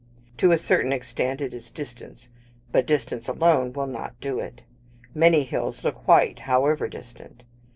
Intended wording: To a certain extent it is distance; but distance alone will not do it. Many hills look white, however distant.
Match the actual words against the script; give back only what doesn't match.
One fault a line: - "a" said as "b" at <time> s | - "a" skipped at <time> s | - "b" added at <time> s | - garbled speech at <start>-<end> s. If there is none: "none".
none